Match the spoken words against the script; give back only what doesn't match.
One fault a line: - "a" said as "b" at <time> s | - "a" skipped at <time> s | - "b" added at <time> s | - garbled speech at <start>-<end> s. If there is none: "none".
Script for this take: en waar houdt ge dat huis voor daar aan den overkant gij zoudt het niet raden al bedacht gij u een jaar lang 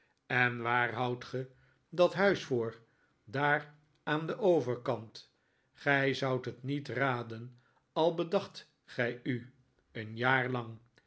none